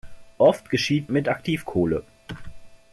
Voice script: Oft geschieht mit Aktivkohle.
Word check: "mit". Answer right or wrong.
right